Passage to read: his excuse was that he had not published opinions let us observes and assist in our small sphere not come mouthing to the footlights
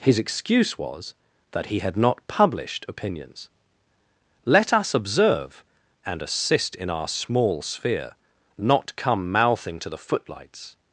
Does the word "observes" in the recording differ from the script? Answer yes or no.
yes